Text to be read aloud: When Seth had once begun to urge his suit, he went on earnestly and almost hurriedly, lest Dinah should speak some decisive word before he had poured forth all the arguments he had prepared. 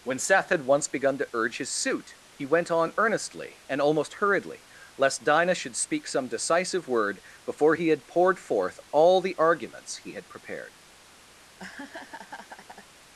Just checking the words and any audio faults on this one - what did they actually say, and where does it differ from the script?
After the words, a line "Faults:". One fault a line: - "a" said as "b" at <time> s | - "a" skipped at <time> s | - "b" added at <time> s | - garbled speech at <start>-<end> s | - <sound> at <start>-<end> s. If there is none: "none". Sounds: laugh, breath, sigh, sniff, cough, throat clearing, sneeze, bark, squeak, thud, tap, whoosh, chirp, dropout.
When Seth had once begun to urge his suit, he went on earnestly and almost hurriedly, lest Dinah should speak some decisive word before he had poured forth all the arguments he had prepared.
Faults:
- laugh at 11.4-12.9 s